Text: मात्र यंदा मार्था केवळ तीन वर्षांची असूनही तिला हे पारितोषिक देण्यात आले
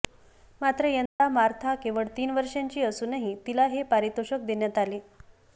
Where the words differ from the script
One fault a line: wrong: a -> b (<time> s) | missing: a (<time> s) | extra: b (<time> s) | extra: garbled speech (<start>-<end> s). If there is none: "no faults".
no faults